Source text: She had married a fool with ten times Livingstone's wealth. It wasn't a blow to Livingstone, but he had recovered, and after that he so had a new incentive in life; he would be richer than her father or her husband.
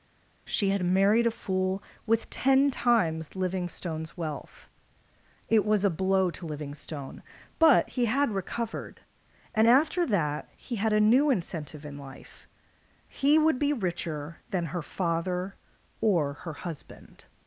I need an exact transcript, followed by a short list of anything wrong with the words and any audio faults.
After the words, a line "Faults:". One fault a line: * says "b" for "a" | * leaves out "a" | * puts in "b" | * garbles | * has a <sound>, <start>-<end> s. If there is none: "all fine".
She had married a fool with ten times Livingstone's wealth. It was a blow to Livingstone, but he had recovered, and after that he had a new incentive in life; he would be richer than her father or her husband.
Faults:
* says "was" for "wasn't"
* leaves out "so"